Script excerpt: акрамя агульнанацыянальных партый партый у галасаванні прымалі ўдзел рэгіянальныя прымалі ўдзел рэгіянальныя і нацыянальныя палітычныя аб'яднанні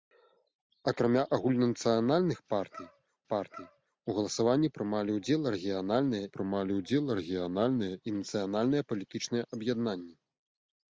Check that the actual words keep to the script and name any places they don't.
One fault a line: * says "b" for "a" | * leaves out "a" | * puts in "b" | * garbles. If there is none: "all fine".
all fine